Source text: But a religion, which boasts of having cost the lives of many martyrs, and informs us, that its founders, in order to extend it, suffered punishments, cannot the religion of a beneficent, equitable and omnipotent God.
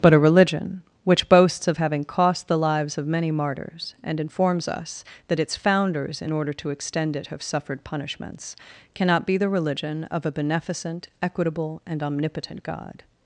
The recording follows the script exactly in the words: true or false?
false